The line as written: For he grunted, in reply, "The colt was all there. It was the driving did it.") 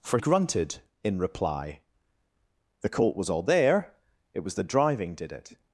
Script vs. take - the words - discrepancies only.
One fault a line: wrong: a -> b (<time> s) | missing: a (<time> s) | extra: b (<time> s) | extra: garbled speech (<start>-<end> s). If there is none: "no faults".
missing: he (0.2 s)